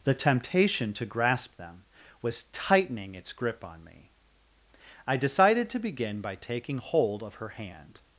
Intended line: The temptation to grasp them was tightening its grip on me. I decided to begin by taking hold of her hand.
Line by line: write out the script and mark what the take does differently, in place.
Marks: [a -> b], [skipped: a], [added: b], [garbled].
The temptation to grasp them was tightening its grip on me. I decided to begin by taking hold of her hand.